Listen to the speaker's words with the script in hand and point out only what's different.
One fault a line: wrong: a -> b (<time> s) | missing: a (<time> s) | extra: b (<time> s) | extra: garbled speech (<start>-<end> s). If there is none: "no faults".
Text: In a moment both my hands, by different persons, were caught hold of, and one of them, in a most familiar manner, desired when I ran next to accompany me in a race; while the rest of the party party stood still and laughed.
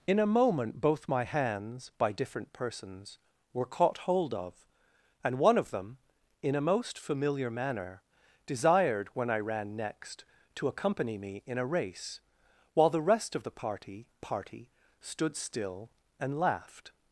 no faults